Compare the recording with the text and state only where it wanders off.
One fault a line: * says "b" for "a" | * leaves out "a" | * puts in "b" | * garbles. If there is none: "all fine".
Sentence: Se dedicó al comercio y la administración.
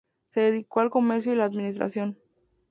all fine